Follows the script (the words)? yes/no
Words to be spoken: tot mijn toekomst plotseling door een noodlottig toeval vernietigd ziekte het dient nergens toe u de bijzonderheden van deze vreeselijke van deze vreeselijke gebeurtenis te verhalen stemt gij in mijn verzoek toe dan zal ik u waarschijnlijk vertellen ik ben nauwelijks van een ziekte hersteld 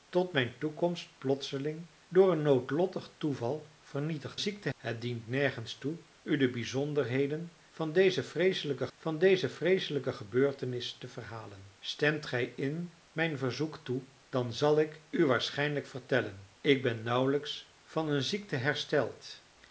yes